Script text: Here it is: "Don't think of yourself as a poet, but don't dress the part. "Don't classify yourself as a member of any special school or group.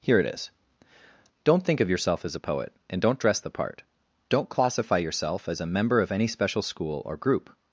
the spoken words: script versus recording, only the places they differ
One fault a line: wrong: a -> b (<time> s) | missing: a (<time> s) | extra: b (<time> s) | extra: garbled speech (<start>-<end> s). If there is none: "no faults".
wrong: but -> and (2.9 s)